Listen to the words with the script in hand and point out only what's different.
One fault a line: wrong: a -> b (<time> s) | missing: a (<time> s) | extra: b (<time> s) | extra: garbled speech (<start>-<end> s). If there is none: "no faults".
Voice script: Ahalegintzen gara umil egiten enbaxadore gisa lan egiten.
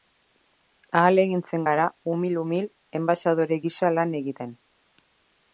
wrong: egiten -> umil (2.4 s)